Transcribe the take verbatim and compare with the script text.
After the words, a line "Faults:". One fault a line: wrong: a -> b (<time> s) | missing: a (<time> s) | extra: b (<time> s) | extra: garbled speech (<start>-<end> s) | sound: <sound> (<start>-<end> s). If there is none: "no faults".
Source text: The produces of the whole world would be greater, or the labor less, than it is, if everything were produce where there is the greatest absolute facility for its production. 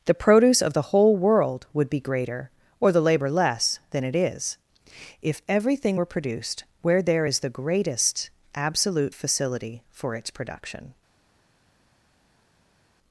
The produce of the whole world would be greater, or the labor less, than it is, if everything were produced where there is the greatest absolute facility for its production.
Faults:
wrong: produces -> produce (0.1 s)
wrong: produce -> produced (6.0 s)